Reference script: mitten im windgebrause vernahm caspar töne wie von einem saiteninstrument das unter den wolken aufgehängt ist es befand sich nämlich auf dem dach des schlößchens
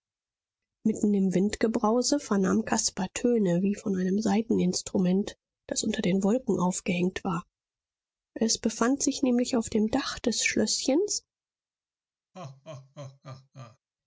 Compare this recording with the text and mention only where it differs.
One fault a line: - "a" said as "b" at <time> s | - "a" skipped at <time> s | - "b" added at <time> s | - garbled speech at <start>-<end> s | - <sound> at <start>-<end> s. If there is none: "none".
- "ist" said as "war" at 7.2 s
- laugh at 12.3-13.8 s